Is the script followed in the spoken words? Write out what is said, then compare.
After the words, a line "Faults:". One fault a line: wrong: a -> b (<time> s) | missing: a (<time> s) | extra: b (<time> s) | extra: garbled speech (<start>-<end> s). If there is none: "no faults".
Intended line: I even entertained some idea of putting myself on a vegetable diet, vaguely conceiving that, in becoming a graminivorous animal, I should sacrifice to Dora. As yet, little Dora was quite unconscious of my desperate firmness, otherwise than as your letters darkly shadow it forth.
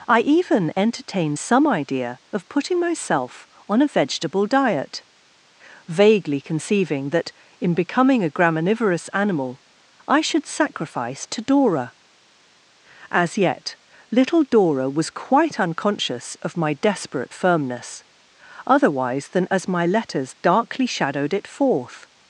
I even entertained some idea of putting myself on a vegetable diet, vaguely conceiving that, in becoming a graminivorous animal, I should sacrifice to Dora. As yet, little Dora was quite unconscious of my desperate firmness, otherwise than as my letters darkly shadowed it forth.
Faults:
wrong: your -> my (19.7 s)
wrong: shadow -> shadowed (20.8 s)